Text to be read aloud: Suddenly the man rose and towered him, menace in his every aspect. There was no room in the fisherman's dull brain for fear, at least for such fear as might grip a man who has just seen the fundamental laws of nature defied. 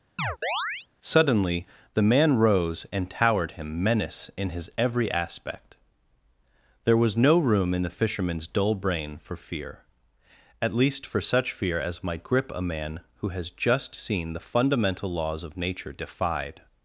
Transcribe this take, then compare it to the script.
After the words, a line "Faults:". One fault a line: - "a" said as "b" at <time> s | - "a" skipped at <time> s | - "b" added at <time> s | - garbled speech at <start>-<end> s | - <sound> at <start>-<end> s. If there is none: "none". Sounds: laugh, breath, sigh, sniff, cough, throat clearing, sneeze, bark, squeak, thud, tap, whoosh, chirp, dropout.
Suddenly the man rose and towered him, menace in his every aspect. There was no room in the fisherman's dull brain for fear, at least for such fear as might grip a man who has just seen the fundamental laws of nature defied.
Faults:
- chirp at 0.2-0.9 s